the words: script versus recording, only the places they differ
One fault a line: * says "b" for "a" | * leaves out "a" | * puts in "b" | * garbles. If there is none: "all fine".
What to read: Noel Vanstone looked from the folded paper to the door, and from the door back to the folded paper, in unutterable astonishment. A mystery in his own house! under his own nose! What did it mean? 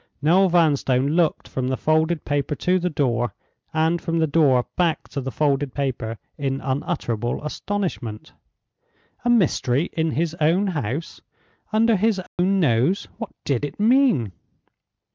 all fine